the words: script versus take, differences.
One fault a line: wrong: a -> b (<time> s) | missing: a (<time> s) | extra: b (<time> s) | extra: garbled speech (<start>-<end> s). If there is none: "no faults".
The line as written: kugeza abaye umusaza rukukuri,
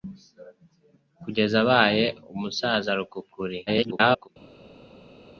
extra: garbled speech (3.7-4.3 s)